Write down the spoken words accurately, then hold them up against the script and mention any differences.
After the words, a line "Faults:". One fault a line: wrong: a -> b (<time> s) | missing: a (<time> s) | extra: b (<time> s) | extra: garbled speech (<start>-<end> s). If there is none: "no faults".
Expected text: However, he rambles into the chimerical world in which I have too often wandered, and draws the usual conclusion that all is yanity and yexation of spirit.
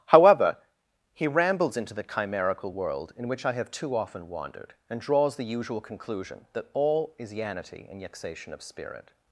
However, he rambles into the chimerical world in which I have too often wandered, and draws the usual conclusion that all is yanity and yexation of spirit.
Faults:
no faults